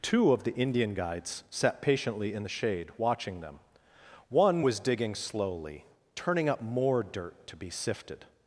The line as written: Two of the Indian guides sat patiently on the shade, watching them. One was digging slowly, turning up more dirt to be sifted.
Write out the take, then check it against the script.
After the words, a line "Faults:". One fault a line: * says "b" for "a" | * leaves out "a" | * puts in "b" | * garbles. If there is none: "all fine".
Two of the Indian guides sat patiently in the shade, watching them. One was digging slowly, turning up more dirt to be sifted.
Faults:
* says "in" for "on"